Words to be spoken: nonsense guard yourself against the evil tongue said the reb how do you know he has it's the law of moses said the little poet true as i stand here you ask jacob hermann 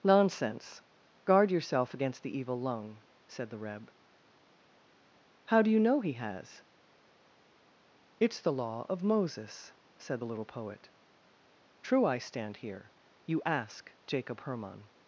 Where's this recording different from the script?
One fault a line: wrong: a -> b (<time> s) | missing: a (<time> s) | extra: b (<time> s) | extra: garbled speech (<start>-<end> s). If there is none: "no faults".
wrong: tongue -> lung (2.6 s)
missing: as (12.0 s)